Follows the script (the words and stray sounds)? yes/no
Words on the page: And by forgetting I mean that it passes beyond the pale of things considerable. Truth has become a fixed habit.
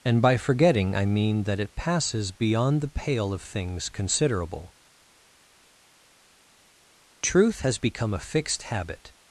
yes